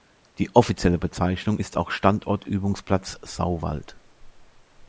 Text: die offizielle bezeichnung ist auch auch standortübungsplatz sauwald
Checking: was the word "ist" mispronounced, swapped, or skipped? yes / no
no